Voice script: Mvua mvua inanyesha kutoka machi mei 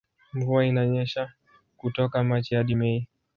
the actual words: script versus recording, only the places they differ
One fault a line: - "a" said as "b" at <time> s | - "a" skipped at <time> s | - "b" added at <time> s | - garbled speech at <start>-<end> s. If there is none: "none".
- "mvua" skipped at 0.7 s
- "hadi" added at 2.5 s